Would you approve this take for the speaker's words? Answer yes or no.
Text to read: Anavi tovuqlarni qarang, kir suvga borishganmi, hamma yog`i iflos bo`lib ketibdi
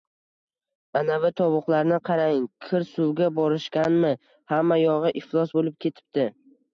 yes